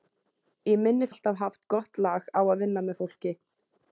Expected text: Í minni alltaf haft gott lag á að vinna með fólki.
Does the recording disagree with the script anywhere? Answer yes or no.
no